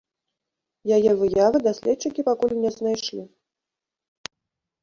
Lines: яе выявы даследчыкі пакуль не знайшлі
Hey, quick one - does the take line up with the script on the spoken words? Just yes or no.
yes